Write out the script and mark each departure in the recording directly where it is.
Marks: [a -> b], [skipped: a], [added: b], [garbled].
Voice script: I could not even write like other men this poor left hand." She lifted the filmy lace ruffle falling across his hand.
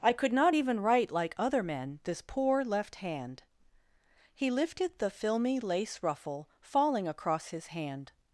I could not even write like other men this poor left hand." [She -> He] lifted the filmy lace ruffle falling across his hand.